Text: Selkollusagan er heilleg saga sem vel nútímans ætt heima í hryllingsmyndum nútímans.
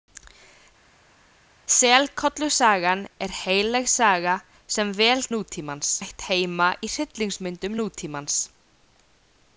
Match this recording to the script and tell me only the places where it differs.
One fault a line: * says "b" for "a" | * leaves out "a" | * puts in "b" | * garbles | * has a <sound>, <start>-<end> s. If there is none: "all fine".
all fine